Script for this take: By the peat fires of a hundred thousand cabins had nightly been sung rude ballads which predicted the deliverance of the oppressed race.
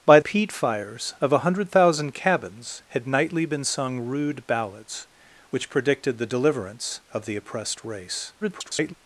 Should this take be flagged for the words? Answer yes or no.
yes